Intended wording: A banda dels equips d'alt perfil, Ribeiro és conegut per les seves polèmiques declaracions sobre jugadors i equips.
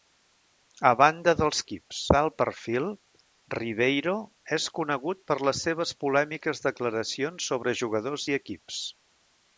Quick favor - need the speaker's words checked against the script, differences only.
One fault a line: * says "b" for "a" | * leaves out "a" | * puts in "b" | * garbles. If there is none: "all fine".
all fine